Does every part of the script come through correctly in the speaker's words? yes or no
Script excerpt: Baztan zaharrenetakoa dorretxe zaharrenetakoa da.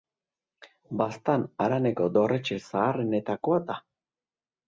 no